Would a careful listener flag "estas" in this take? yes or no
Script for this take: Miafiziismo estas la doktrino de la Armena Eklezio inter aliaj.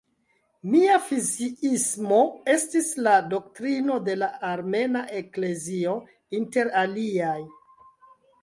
yes